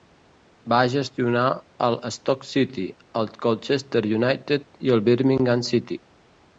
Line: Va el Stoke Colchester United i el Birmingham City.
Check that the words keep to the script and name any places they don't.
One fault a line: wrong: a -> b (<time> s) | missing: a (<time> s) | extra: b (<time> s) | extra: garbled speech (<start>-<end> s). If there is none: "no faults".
extra: gestionar (0.9 s)
extra: City el (2.5 s)